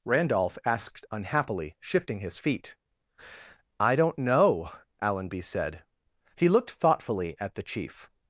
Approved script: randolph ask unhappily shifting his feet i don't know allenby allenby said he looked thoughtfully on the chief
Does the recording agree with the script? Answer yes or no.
no